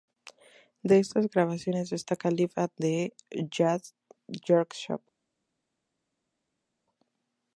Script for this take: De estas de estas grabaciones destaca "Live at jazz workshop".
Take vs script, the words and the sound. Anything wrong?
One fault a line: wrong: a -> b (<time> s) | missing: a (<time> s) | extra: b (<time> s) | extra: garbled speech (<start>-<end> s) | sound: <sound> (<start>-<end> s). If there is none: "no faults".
missing: de estas (1.3 s)
extra: the (2.8 s)